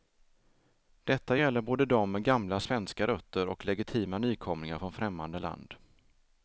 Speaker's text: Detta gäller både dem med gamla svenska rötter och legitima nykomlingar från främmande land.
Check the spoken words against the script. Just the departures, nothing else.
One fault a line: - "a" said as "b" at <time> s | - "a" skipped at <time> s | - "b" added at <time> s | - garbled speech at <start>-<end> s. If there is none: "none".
none